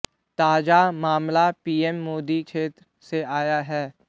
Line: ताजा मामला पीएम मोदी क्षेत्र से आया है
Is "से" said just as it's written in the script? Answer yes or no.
yes